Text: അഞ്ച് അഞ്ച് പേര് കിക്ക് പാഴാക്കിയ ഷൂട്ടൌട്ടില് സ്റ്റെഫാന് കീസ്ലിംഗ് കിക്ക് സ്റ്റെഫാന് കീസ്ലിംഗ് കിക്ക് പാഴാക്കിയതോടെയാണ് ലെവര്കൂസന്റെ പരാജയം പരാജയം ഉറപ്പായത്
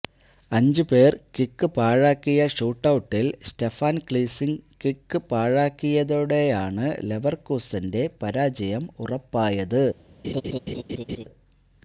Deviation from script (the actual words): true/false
true